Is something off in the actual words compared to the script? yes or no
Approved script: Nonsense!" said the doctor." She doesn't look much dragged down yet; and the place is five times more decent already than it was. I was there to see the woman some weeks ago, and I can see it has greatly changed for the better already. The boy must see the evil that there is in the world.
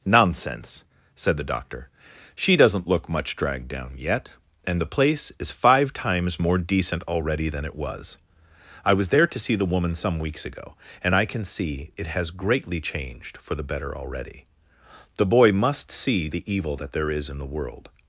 no